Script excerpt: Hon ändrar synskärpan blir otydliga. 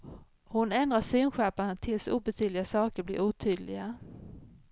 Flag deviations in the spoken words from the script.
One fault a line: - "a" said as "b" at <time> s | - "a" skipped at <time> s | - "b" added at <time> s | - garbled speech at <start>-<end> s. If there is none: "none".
- "tills obetydliga saker" added at 1.7 s